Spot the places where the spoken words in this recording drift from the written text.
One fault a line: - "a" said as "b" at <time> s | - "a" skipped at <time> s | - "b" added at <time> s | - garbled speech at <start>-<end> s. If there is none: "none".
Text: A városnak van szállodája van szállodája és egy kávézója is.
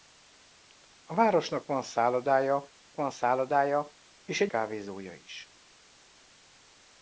none